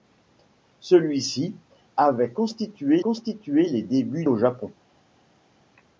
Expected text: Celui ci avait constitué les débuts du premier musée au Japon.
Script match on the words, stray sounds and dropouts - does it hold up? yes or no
no